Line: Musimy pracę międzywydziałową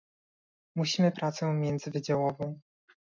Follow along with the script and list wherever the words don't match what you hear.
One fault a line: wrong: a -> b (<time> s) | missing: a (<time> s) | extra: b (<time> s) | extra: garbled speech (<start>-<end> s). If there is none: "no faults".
no faults